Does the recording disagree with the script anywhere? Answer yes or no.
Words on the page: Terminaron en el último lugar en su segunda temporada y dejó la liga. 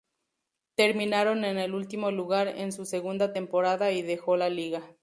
no